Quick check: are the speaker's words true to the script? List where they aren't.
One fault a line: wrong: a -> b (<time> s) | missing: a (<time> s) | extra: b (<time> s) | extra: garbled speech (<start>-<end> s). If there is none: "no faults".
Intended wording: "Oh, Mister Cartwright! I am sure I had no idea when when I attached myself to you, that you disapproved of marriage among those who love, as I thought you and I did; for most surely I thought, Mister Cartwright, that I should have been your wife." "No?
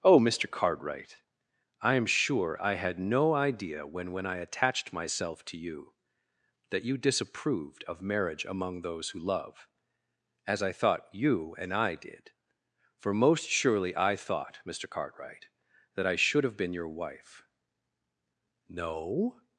no faults